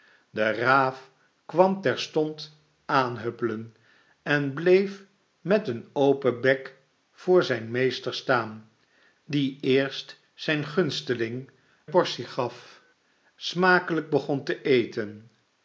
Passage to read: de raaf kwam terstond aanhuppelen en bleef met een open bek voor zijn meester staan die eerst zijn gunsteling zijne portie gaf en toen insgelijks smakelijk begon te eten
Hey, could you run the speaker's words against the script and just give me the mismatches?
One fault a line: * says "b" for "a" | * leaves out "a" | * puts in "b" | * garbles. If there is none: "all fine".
* leaves out "zijne"
* leaves out "en toen insgelijks"